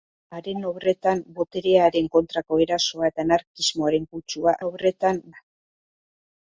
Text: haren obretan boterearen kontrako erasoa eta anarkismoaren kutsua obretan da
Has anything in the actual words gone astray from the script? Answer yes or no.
no